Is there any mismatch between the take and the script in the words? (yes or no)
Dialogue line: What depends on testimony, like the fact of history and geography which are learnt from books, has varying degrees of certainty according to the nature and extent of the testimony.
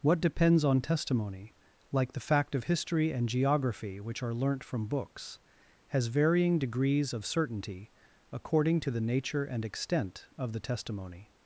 no